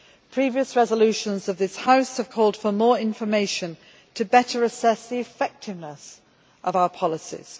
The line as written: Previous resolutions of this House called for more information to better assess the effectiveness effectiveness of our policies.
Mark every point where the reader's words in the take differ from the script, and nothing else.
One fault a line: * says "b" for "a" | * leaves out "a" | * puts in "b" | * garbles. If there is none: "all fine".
* puts in "have"
* leaves out "effectiveness"